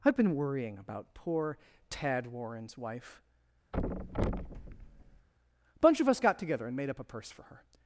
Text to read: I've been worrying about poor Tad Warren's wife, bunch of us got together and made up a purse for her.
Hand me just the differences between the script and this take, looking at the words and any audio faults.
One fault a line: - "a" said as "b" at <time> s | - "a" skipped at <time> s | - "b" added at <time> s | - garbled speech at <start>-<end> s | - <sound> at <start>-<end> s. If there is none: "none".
- thud at 3.7-5.3 s
- "a" added at 5.8 s